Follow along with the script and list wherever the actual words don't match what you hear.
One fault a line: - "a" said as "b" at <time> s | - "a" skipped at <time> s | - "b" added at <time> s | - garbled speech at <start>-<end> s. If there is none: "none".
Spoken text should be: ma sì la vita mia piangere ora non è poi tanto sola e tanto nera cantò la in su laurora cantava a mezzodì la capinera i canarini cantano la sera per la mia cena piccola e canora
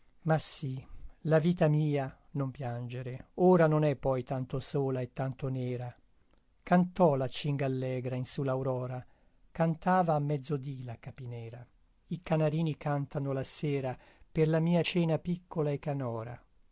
- "non" added at 2.3 s
- "cingallegra" added at 7.3 s